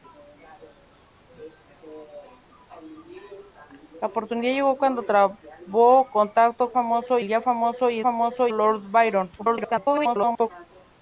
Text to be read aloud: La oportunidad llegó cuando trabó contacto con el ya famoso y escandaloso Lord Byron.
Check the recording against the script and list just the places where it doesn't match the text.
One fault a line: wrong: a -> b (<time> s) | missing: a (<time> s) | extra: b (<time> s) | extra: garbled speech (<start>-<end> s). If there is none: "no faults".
wrong: con -> famoso (6.7 s)
wrong: escandaloso -> famoso (8.0 s)
extra: garbled speech (9.4-10.5 s)